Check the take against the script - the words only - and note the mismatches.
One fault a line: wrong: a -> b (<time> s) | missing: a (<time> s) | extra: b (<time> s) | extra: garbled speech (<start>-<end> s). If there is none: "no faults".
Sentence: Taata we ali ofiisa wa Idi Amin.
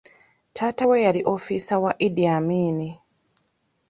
wrong: ali -> yali (1.1 s)